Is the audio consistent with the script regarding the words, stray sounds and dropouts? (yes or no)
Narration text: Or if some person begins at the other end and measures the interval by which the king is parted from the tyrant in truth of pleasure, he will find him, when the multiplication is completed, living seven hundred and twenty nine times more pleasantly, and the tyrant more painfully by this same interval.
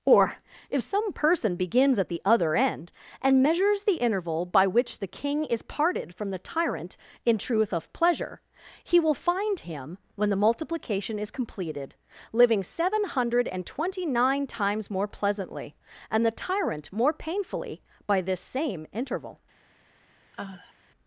no